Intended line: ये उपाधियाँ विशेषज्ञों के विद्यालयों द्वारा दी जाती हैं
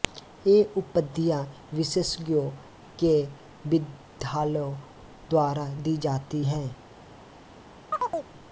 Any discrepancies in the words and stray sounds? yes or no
yes